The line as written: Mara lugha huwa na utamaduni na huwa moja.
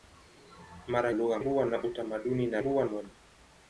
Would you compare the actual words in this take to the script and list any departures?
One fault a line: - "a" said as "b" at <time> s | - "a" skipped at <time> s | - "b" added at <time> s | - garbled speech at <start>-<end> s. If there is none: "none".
none